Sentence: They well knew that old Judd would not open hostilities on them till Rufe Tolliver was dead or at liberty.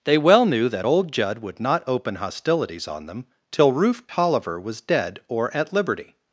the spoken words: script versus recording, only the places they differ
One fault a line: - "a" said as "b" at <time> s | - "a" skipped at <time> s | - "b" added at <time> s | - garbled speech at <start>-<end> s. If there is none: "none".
none